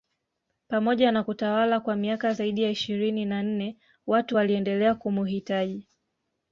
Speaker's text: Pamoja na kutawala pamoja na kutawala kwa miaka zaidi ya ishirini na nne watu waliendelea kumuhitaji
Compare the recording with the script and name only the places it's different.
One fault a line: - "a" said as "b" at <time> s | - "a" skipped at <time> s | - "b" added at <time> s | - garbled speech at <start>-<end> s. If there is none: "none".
- "pamoja na kutawala" skipped at 1.8 s